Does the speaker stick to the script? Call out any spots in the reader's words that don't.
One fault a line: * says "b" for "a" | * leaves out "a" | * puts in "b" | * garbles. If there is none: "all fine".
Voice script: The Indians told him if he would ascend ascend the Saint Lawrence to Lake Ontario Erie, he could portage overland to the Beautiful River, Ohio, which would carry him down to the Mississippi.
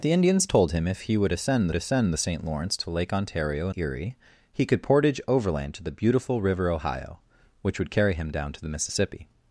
all fine